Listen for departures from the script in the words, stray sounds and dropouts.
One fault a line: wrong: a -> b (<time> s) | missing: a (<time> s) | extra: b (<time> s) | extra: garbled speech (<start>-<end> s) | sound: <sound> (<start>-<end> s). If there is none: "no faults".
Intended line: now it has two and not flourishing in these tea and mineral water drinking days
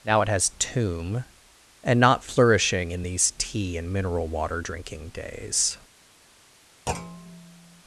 wrong: two -> tomb (0.6 s)
sound: thud (6.9-7.8 s)